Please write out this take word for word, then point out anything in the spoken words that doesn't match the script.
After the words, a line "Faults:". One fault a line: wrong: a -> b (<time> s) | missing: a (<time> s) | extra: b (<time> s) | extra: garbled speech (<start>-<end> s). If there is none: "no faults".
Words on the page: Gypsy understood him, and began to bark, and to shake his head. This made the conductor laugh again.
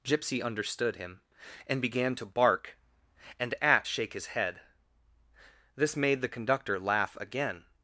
Gypsy understood him, and began to bark, and at shake his head. This made the conductor laugh again.
Faults:
wrong: to -> at (3.6 s)